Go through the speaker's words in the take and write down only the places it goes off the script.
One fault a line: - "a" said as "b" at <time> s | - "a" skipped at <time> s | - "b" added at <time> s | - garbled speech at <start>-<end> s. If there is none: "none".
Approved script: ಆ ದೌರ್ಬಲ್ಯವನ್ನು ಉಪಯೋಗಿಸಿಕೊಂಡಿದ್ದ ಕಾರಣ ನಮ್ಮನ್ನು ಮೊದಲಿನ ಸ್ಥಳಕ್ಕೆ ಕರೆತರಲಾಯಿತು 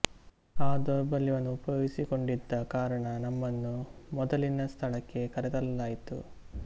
none